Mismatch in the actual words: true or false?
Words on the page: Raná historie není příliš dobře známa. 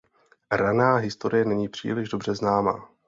false